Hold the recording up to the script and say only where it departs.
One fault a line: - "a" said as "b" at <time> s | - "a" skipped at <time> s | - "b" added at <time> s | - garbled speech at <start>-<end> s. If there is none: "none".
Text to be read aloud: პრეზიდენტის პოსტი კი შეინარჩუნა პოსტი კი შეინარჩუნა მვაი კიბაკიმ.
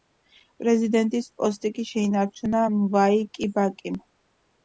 - "პოსტი კი შეინარჩუნა" skipped at 2.6 s